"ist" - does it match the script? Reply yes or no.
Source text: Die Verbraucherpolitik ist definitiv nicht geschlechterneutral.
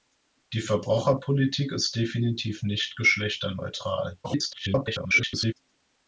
yes